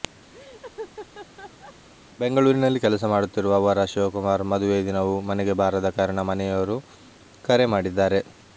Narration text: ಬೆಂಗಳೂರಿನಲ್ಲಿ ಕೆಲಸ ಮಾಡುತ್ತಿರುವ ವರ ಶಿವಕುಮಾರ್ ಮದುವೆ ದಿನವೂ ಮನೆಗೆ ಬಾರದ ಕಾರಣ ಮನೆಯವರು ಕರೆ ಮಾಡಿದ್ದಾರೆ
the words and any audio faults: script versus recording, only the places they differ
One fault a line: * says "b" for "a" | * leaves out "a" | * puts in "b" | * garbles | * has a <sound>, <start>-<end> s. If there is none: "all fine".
* has a laugh, 0.3-1.7 s